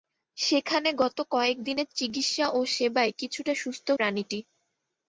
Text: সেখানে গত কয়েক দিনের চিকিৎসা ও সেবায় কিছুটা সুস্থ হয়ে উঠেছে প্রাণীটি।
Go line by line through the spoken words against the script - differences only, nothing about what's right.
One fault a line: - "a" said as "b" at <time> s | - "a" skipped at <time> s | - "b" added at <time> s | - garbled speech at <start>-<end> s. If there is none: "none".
- "হয়ে উঠেছে" skipped at 3.9 s